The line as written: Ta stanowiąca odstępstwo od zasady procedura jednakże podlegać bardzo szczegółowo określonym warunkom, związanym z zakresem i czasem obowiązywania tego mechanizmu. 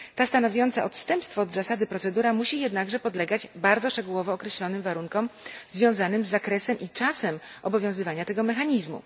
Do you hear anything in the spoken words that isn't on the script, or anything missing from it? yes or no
yes